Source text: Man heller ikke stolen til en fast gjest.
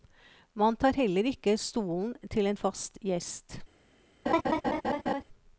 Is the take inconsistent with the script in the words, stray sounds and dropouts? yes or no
yes